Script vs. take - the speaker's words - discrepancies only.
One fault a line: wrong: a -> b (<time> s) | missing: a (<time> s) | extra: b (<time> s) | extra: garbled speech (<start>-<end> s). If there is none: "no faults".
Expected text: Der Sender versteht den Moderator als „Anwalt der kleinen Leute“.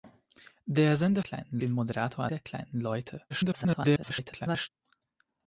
wrong: versteht -> kleinen (1.2 s)
missing: als Anwalt (2.3 s)
extra: garbled speech (3.3-4.7 s)